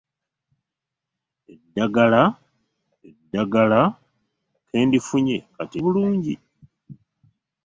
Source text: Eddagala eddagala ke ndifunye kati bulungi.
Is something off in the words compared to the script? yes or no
no